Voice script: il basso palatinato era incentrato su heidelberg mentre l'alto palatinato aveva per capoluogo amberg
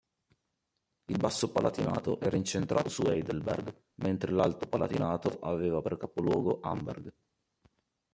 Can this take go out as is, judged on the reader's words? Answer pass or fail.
pass